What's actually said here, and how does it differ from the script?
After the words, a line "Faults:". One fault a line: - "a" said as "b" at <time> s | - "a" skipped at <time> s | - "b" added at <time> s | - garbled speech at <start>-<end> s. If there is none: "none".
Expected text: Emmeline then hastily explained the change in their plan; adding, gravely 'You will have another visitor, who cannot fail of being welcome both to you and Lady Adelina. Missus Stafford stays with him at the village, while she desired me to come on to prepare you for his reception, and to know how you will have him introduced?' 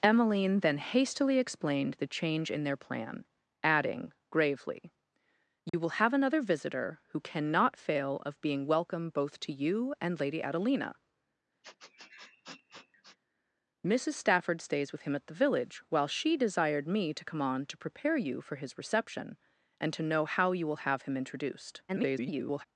Emmeline then hastily explained the change in their plan; adding, gravely 'You will have another visitor, who cannot fail of being welcome both to you and Lady Adelina. Missus Stafford stays with him at the village, while she desired me to come on to prepare you for his reception, and to know how you will have him introduced?' [garbled]
Faults:
- garbled speech at 21.9-22.7 s